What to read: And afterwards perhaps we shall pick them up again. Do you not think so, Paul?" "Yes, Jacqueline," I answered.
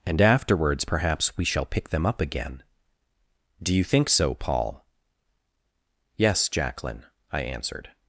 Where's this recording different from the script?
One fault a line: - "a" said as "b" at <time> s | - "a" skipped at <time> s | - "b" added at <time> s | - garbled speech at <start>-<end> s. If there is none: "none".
- "not" skipped at 3.8 s